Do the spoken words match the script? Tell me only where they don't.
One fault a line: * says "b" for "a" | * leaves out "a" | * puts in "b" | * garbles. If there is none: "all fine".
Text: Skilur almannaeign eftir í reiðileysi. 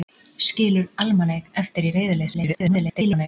* garbles